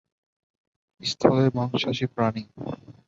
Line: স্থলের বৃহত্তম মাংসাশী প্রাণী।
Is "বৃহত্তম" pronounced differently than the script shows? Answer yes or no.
yes